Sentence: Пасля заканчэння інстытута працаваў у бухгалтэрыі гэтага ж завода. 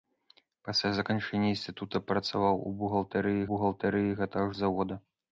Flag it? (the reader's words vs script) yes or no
yes